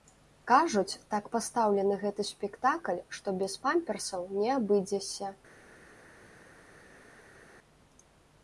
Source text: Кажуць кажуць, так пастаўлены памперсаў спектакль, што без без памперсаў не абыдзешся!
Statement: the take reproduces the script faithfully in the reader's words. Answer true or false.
false